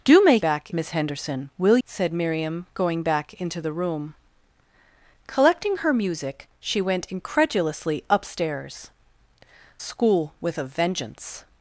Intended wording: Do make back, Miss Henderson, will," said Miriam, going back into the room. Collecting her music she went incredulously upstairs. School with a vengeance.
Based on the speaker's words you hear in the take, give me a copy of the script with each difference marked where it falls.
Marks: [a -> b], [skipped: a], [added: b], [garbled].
Do make back, Miss Henderson, will," said Miriam, going back into the room. Collecting her music she went incredulously upstairs. School with a vengeance.